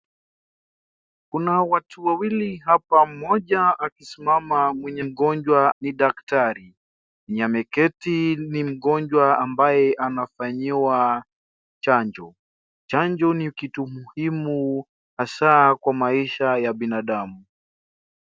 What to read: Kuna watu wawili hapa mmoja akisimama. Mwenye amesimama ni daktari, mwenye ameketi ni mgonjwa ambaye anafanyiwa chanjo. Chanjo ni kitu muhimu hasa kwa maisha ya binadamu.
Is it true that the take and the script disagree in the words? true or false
true